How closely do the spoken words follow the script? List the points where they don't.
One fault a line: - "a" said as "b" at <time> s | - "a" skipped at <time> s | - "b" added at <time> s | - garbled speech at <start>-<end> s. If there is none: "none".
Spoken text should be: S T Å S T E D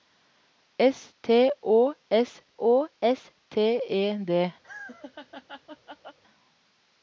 - "Å S" added at 2.6 s